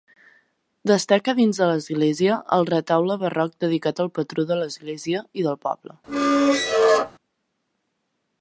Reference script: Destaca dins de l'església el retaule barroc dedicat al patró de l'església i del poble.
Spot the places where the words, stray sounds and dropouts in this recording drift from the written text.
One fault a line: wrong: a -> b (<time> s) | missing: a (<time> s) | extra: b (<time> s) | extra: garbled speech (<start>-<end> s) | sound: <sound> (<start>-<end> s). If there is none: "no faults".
sound: squeak (6.1-7.1 s)